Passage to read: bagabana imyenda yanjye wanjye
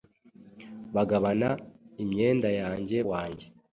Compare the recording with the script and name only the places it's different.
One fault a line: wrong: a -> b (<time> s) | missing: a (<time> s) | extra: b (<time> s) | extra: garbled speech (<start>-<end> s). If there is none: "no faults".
no faults